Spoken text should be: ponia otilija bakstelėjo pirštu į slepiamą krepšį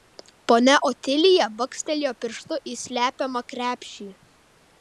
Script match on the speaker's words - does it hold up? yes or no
yes